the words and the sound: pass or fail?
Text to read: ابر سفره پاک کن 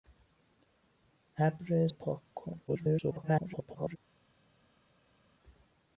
fail